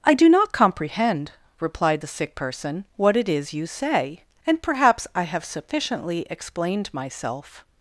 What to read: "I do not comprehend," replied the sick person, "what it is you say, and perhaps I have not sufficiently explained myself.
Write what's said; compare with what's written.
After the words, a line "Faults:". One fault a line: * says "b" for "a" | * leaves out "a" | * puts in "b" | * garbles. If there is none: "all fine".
"I do not comprehend," replied the sick person, "what it is you say, and perhaps I have sufficiently explained myself.
Faults:
* leaves out "not"